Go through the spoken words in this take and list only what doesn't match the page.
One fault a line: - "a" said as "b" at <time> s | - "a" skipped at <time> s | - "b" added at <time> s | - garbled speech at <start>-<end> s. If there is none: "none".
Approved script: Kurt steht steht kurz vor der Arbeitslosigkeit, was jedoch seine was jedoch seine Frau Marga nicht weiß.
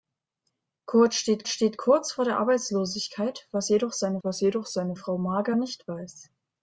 none